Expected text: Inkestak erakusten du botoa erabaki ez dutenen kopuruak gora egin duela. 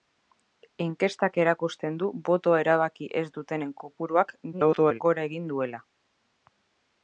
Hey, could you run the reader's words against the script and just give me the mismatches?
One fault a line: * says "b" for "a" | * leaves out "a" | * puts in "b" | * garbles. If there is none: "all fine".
* garbles